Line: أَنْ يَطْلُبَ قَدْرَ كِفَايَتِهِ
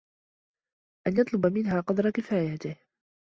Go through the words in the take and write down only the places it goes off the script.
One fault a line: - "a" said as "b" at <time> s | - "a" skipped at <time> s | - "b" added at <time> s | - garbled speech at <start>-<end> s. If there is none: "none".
- "مِنْهَا" added at 1.4 s